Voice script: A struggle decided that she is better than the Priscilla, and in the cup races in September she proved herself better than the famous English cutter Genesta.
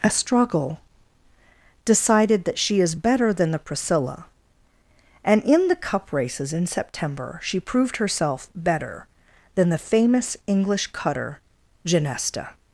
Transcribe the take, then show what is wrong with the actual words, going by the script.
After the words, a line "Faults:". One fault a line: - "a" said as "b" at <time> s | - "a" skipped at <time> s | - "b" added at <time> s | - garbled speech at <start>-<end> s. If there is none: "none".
A struggle decided that she is better than the Priscilla, and in the cup races in September she proved herself better than the famous English cutter Genesta.
Faults:
none